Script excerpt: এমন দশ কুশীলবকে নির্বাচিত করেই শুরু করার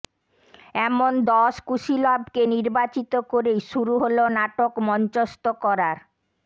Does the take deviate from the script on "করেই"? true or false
false